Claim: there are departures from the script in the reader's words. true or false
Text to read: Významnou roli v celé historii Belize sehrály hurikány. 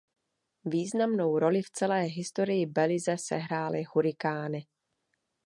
false